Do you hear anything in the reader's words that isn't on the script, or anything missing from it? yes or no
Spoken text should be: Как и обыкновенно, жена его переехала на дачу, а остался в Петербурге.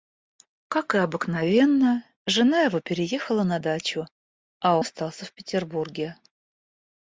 no